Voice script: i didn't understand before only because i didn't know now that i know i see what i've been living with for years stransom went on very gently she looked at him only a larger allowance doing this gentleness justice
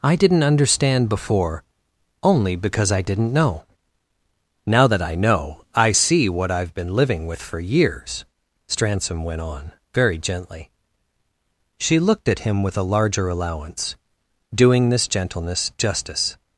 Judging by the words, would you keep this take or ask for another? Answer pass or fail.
fail